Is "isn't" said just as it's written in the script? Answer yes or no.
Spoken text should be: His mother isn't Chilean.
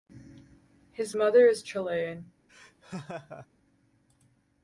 no